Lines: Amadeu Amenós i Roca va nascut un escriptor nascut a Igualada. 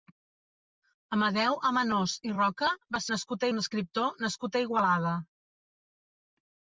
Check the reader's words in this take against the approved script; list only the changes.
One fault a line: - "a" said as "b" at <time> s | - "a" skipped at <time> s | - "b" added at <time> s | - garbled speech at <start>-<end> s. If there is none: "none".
none